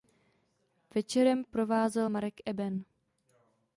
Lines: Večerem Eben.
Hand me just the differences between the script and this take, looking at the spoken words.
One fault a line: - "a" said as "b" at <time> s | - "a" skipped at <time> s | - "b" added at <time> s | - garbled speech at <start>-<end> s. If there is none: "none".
- "provázel Marek" added at 1.5 s